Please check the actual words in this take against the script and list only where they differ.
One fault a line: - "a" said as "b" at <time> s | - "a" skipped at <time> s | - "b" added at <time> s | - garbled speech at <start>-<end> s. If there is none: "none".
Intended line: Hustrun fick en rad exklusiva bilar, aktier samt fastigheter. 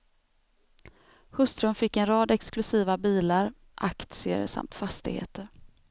none